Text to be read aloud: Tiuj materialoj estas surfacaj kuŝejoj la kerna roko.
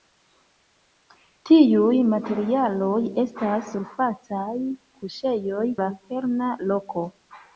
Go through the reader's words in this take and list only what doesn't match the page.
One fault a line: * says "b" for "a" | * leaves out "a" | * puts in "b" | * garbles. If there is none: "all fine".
all fine